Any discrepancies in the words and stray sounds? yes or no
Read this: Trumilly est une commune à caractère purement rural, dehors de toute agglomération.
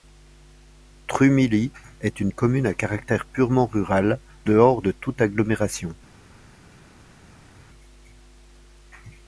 no